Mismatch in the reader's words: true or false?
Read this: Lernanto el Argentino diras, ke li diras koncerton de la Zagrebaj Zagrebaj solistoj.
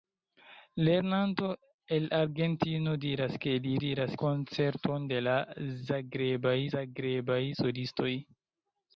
false